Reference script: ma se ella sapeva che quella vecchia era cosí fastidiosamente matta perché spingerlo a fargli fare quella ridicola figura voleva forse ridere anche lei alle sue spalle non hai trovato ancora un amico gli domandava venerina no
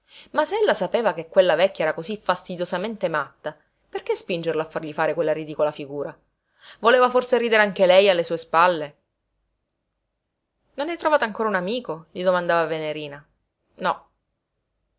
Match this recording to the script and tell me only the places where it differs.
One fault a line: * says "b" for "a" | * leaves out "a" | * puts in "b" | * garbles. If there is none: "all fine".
all fine